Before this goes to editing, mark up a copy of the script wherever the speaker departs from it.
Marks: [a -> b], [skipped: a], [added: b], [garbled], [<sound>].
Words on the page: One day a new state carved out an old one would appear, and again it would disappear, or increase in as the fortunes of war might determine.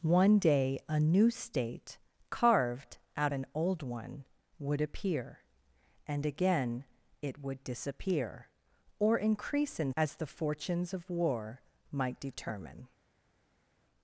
One day a new state carved out an old one would appear, and again it would disappear, or increase in as the fortunes of war might determine.